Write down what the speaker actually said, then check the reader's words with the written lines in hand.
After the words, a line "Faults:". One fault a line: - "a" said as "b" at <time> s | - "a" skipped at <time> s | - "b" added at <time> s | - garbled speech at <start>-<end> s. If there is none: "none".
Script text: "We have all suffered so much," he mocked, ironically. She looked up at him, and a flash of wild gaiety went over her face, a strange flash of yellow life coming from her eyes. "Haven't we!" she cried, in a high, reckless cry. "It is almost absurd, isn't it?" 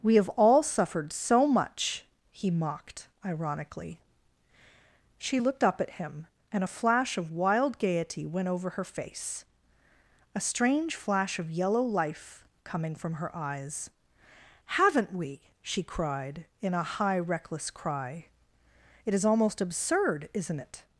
"We have all suffered so much," he mocked, ironically. She looked up at him, and a flash of wild gaiety went over her face, a strange flash of yellow life coming from her eyes. "Haven't we!" she cried, in a high, reckless cry. "It is almost absurd, isn't it?"
Faults:
none